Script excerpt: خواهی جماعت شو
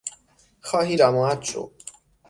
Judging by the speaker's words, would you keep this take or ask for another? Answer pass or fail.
pass